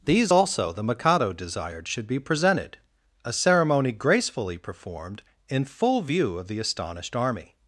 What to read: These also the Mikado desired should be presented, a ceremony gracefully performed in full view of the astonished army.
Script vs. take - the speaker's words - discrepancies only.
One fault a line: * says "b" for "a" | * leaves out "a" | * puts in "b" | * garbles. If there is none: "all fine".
all fine